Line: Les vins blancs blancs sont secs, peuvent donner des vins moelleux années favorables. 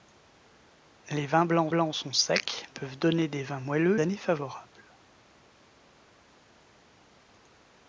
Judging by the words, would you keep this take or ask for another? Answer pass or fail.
pass